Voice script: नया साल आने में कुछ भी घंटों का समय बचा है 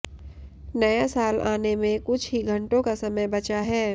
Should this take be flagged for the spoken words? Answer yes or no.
yes